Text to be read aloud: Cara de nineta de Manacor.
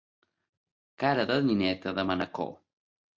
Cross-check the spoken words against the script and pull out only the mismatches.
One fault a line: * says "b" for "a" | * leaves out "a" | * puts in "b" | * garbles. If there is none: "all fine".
all fine